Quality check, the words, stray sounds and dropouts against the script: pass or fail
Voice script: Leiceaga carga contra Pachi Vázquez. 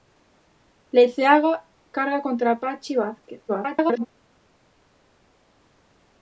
fail